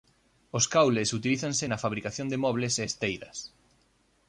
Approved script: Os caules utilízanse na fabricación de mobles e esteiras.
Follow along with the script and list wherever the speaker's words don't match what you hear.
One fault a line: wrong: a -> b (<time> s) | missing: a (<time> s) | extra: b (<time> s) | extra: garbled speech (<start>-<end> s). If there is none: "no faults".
no faults